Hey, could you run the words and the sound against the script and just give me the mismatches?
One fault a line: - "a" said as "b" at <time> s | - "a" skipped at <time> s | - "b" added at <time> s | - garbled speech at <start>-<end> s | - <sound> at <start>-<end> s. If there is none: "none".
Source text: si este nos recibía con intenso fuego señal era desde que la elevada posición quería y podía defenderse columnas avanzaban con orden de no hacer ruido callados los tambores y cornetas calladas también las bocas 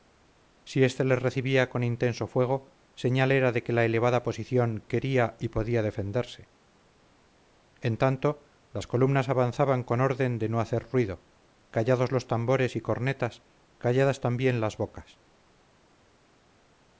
- "nos" said as "les" at 1.0 s
- "desde" said as "de" at 3.5 s
- "en tanto las" added at 7.8 s